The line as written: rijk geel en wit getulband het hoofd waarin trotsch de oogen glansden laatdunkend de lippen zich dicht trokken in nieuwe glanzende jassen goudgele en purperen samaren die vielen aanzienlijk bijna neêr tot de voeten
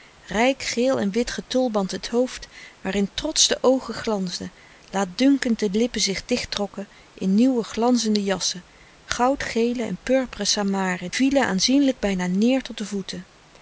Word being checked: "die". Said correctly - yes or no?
no